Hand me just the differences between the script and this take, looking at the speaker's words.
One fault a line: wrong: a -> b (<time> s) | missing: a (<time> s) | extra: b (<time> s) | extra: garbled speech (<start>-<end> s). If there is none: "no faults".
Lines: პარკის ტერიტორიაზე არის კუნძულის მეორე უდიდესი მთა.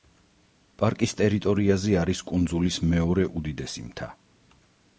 no faults